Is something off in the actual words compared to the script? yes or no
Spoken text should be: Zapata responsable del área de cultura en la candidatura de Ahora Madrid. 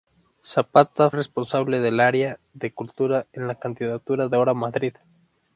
no